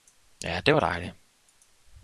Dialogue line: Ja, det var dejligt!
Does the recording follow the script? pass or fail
pass